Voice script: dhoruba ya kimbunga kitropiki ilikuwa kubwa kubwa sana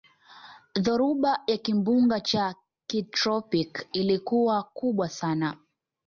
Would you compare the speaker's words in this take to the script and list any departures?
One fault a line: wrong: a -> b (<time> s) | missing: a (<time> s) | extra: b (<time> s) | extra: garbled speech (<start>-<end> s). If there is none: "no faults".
extra: cha (2.2 s)
missing: kubwa (5.1 s)